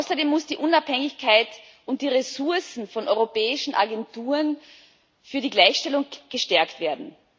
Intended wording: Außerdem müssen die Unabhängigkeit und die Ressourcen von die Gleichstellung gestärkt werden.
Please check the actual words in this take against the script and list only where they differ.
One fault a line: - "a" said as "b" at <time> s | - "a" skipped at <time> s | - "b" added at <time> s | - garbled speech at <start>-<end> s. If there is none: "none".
- "europäischen Agenturen für" added at 3.1 s